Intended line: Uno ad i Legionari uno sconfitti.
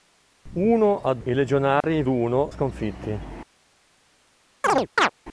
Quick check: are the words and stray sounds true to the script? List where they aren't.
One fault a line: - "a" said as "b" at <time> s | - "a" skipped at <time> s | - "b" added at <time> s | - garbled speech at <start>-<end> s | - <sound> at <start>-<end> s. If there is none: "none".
- dropout at 1.8-1.8 s
- chirp at 4.6-5.1 s